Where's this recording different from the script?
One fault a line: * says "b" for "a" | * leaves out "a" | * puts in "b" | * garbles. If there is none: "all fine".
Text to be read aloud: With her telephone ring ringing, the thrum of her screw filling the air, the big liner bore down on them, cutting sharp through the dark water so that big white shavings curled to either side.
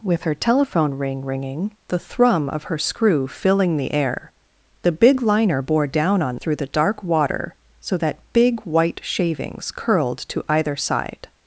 * leaves out "them cutting sharp"